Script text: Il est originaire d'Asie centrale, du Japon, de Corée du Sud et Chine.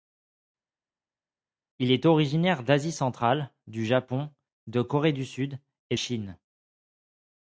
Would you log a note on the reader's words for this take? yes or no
no